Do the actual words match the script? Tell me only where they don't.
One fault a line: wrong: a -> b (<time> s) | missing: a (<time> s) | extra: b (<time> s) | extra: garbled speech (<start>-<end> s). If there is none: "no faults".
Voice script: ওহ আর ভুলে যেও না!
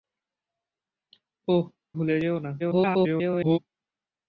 missing: আর (1.6 s)
extra: garbled speech (2.6-3.6 s)